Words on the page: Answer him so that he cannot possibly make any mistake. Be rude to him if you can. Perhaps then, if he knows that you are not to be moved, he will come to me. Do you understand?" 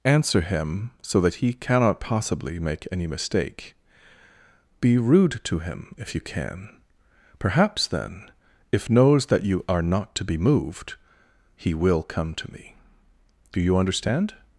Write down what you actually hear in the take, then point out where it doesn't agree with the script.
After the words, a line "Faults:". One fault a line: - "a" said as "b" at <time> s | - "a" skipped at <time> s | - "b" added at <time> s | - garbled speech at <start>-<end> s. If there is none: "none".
Answer him so that he cannot possibly make any mistake. Be rude to him if you can. Perhaps then, if knows that you are not to be moved, he will come to me. Do you understand?"
Faults:
- "he" skipped at 8.9 s